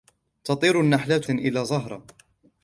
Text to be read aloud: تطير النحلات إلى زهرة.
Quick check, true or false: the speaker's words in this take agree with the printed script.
true